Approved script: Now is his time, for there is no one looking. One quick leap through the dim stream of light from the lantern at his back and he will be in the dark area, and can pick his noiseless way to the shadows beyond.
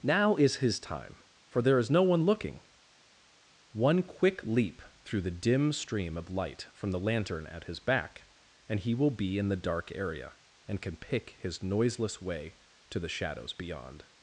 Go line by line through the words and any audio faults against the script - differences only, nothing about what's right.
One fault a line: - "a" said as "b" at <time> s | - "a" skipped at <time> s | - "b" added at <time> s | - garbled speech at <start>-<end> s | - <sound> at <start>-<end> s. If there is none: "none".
none